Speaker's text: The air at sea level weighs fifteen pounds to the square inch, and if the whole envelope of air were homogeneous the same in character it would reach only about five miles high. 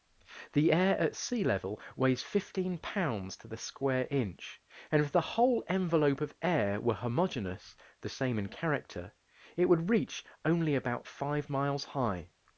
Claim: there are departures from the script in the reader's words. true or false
false